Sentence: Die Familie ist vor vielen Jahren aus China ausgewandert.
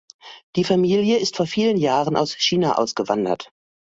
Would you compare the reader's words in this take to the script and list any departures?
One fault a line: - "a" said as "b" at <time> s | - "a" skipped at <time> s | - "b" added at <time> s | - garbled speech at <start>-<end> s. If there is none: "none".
none